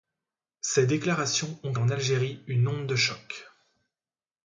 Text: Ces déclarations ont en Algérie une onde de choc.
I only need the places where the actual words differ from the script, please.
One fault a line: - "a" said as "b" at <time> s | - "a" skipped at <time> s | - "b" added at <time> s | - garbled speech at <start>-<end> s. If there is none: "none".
none